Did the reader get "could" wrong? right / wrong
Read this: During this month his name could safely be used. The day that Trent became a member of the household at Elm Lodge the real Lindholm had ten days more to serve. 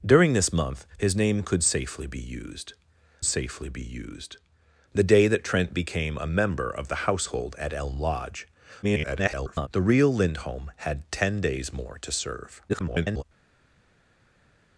right